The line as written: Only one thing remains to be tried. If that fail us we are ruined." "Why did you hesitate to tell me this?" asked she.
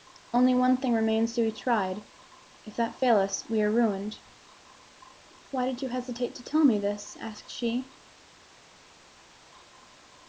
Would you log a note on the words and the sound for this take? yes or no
no